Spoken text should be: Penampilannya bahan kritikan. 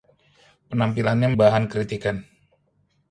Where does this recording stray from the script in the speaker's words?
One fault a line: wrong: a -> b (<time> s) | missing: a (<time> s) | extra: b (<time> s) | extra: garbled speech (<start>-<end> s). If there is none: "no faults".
no faults